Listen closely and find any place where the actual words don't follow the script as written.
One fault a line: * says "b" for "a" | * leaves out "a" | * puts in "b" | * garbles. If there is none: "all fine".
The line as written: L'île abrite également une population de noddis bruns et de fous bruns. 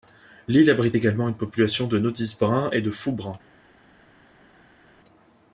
all fine